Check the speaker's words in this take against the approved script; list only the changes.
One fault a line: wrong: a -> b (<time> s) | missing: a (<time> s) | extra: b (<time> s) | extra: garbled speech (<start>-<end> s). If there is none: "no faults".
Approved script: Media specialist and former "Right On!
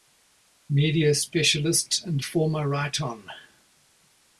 no faults